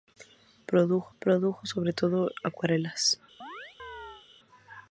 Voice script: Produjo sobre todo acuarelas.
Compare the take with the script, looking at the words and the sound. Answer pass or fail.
fail